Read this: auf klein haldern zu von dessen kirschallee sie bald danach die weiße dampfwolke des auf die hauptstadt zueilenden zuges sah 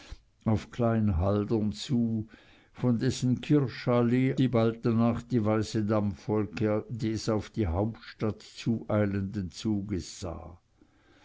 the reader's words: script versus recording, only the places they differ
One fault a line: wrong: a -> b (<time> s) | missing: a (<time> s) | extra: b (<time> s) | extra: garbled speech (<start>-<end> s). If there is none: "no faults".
no faults